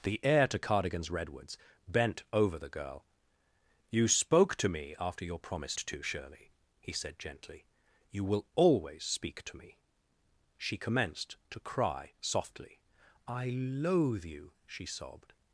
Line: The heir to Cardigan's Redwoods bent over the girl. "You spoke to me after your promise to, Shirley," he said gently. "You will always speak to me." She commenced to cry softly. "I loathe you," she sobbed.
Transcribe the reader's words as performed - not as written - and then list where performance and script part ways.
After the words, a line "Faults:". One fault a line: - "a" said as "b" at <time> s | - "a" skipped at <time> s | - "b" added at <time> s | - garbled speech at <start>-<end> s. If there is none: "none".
The heir to Cardigan's Redwoods bent over the girl. "You spoke to me after your promise to, Shirley," he said gently. "You will always speak to me." She commenced to cry softly. "I loathe you," she sobbed.
Faults:
none